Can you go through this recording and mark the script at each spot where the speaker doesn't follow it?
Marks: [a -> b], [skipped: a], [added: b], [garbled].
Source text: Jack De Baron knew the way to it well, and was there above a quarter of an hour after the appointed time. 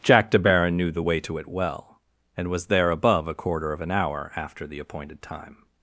Jack De Baron knew the way to it well, and was there above a quarter of an hour after the appointed time.